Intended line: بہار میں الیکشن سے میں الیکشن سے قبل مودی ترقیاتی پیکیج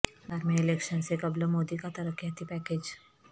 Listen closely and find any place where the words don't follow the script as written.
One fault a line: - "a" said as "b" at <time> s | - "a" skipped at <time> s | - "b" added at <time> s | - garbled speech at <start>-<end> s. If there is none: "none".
- "میں الیکشن سے" skipped at 1.1 s
- "کا" added at 1.8 s